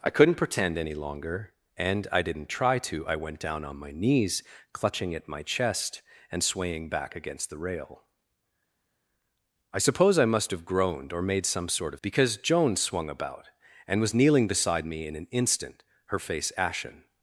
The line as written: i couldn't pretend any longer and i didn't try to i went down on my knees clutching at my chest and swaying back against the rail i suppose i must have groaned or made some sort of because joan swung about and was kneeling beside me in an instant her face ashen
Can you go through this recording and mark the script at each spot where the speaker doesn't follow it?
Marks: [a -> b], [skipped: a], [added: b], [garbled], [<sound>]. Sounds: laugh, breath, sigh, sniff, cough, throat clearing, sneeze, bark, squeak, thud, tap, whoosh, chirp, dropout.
i couldn't pretend any longer and i didn't try to i went down on my knees clutching at my chest and swaying back against the rail i suppose i must have groaned or made some sort of because joan swung about and was kneeling beside me in an instant her face ashen